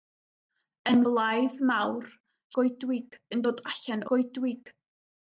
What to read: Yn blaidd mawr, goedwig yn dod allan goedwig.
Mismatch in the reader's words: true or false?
false